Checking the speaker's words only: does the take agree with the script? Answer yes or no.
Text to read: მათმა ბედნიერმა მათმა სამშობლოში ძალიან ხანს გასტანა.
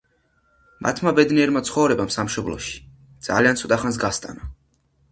no